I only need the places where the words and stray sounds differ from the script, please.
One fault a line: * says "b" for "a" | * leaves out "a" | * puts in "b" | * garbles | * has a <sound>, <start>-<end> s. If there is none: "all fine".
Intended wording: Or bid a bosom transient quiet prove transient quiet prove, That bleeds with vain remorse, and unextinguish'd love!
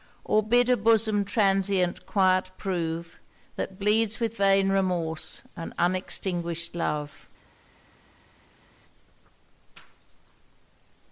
* leaves out "transient quiet prove"